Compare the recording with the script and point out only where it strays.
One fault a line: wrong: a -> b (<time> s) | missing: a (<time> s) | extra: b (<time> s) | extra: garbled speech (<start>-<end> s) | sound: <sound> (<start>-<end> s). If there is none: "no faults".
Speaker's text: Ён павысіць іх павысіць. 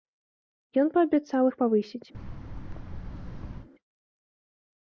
wrong: павысіць -> паабяцаў (0.9 s)
sound: thud (2.1-3.7 s)